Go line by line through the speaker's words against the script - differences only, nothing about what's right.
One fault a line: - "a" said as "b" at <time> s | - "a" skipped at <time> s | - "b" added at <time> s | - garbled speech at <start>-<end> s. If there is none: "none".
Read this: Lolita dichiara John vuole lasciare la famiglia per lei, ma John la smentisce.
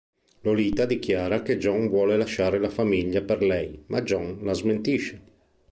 - "che" added at 1.4 s